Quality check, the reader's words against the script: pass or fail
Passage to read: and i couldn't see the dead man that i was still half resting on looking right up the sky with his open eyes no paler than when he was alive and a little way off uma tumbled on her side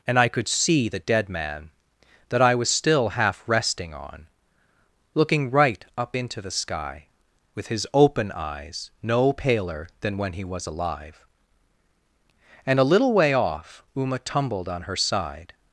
fail